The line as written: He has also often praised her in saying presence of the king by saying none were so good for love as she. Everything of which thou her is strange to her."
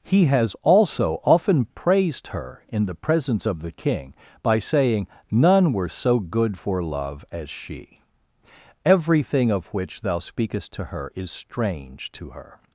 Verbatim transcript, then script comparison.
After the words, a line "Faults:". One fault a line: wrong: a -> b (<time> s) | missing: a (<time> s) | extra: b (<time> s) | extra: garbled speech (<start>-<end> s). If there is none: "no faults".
He has also often praised her in the presence of the king by saying none were so good for love as she. Everything of which thou speakest to her is strange to her."
Faults:
wrong: saying -> the (2.9 s)
extra: speakest to (10.2 s)